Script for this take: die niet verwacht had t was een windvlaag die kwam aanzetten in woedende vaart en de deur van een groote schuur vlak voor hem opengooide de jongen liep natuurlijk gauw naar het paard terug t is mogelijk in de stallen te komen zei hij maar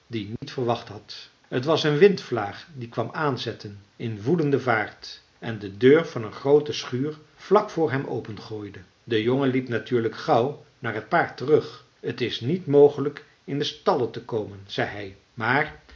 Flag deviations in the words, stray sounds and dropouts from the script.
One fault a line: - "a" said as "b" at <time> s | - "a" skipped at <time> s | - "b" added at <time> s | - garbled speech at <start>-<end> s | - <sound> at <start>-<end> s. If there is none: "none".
- dropout at 0.4-0.4 s
- "niet" added at 12.4 s